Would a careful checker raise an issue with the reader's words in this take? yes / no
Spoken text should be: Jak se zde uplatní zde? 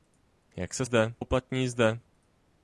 no